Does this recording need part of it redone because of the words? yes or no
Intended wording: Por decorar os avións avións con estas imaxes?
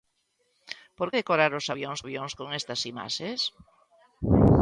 no